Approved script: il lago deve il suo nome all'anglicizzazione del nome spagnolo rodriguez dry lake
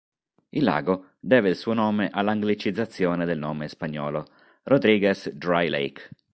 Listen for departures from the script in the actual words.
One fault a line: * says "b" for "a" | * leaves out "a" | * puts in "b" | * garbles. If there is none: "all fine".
all fine